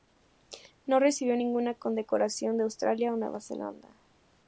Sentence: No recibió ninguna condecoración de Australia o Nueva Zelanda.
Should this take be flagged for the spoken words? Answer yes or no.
no